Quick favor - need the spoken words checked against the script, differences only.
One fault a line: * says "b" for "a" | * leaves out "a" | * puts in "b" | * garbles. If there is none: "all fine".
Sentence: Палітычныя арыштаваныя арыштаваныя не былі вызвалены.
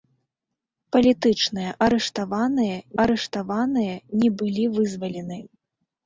all fine